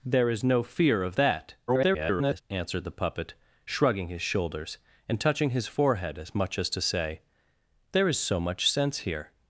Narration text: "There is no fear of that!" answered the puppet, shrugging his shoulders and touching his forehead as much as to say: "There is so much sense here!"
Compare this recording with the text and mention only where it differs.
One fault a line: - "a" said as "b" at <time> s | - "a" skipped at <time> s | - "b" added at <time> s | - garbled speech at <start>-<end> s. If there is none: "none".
- garbled speech at 1.7-2.4 s